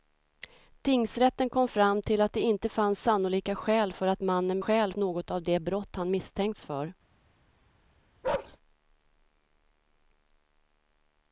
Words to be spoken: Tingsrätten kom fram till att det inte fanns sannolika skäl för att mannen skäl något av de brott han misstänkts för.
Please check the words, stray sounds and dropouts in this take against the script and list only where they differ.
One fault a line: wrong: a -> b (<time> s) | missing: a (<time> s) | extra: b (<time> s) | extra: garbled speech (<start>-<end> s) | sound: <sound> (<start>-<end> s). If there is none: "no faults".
sound: bark (8.2-8.6 s)